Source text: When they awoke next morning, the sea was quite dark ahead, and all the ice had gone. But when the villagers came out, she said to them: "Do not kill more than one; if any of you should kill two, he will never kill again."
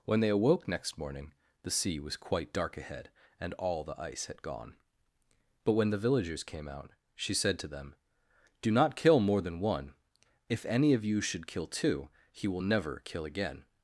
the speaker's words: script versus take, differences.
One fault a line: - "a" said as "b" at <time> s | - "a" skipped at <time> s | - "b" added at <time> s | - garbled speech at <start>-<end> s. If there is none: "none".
none